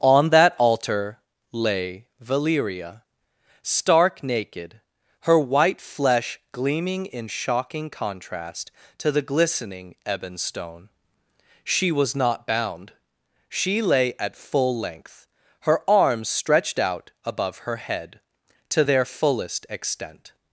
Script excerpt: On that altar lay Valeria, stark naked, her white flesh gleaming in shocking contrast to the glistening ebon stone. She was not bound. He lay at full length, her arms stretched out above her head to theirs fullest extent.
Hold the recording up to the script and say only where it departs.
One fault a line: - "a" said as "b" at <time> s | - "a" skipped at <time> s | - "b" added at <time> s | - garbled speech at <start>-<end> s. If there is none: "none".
- "He" said as "She" at 13.5 s
- "theirs" said as "their" at 18.8 s